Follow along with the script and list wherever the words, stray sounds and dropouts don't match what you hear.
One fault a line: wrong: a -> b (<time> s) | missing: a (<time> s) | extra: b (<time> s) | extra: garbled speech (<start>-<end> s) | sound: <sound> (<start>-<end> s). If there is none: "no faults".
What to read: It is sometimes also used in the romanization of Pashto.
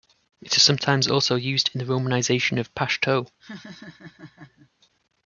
sound: laugh (3.4-4.7 s)